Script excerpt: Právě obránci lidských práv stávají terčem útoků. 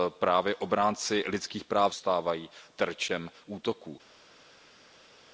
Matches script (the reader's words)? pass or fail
pass